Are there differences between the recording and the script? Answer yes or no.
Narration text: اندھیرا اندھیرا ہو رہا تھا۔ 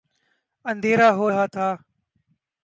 yes